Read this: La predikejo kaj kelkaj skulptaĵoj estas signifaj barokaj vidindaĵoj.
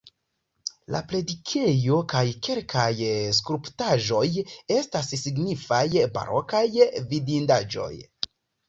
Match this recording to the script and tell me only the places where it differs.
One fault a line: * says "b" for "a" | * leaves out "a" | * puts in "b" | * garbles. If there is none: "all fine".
all fine